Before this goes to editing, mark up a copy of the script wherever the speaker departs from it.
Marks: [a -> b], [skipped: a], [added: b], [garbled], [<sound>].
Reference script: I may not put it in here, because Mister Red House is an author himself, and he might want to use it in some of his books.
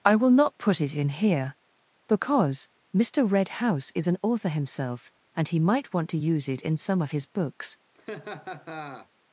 I [may -> will] not put it in here, because Mister Red House is an author himself, and he might want to use it in some of his books. [laugh]